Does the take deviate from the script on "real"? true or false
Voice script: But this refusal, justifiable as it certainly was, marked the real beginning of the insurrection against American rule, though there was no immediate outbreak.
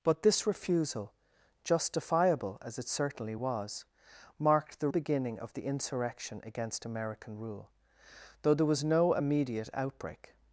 true